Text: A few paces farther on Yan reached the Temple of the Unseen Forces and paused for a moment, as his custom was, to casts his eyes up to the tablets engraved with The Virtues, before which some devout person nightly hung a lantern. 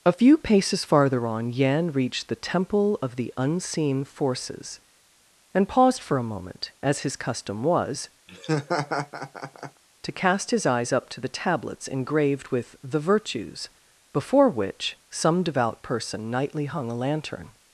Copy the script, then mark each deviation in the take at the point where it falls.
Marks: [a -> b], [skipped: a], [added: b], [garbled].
A few paces farther on Yan reached the Temple of the Unseen Forces and paused for a moment, as his custom was, to [casts -> cast] his eyes up to the tablets engraved with The Virtues, before which some devout person nightly hung a lantern.